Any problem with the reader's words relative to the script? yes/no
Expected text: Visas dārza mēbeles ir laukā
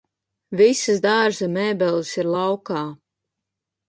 no